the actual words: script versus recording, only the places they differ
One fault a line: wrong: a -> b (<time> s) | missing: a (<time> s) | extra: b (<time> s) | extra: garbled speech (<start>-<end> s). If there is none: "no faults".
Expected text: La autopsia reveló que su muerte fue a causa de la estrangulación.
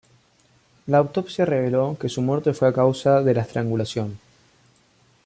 no faults